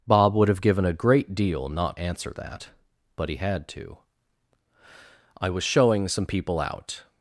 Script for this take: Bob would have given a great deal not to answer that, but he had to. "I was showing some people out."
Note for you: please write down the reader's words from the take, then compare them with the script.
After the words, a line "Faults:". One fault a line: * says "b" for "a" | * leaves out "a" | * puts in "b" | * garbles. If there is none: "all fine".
Bob would have given a great deal not answer that, but he had to. "I was showing some people out."
Faults:
* leaves out "to"